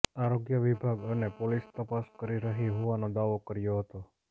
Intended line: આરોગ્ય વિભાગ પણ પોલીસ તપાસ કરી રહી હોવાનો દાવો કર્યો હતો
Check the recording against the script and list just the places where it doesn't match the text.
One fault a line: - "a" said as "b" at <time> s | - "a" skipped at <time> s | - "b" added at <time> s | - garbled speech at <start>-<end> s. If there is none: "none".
- "પણ" said as "અને" at 1.1 s